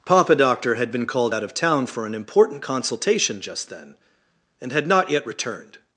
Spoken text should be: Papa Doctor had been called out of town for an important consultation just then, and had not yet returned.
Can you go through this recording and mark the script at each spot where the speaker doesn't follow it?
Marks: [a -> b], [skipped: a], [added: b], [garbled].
Papa Doctor had been called out of town for an important consultation just then, and had not yet returned.